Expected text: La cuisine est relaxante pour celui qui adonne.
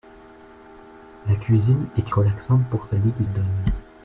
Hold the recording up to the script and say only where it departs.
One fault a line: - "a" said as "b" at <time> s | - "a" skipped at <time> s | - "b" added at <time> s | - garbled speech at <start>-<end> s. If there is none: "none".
none